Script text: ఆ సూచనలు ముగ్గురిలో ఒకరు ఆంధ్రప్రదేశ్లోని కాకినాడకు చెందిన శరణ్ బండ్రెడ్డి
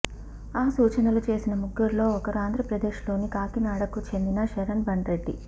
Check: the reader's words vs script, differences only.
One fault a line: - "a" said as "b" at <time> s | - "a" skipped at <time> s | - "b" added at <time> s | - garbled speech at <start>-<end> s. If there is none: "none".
- "చేసిన" added at 1.3 s